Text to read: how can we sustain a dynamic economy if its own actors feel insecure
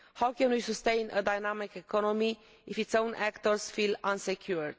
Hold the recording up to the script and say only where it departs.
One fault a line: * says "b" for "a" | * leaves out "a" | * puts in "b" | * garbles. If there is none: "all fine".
all fine